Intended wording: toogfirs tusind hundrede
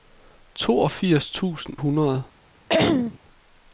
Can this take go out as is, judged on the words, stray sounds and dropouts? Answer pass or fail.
fail